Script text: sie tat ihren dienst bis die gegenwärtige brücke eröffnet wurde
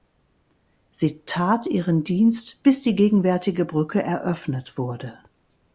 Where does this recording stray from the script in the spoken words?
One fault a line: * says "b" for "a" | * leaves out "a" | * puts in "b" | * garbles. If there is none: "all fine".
all fine